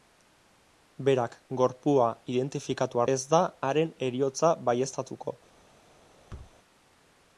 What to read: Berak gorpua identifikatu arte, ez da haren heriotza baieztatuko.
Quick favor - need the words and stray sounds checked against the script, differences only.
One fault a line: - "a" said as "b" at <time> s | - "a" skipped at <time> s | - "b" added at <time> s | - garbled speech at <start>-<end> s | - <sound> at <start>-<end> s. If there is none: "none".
- "arte" skipped at 3.0 s
- thud at 6.3-6.6 s